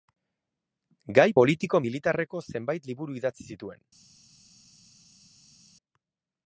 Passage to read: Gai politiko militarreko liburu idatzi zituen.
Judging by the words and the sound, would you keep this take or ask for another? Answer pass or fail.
fail